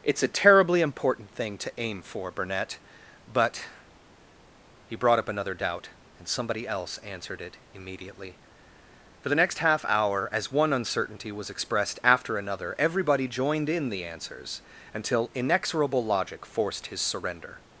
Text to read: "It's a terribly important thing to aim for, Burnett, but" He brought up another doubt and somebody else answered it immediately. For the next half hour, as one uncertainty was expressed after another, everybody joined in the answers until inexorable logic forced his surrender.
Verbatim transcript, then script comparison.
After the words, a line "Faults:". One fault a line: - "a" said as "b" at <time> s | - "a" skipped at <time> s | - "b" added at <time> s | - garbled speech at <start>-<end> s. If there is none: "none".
"It's a terribly important thing to aim for, Burnett, but" He brought up another doubt and somebody else answered it immediately. For the next half hour, as one uncertainty was expressed after another, everybody joined in the answers until inexorable logic forced his surrender.
Faults:
none